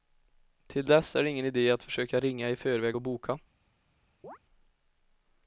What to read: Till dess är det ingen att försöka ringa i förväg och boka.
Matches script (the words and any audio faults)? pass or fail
fail